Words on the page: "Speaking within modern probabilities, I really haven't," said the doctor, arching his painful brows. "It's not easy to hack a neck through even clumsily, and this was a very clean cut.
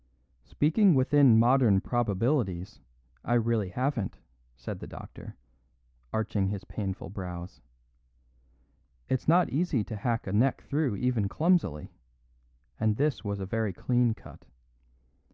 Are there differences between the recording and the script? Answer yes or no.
no